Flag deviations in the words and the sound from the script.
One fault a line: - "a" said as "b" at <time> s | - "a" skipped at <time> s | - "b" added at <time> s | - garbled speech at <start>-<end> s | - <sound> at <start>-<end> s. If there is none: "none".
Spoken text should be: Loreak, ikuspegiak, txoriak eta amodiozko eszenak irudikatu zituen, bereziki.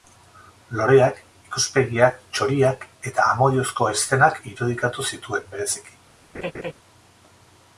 - laugh at 6.3-6.7 s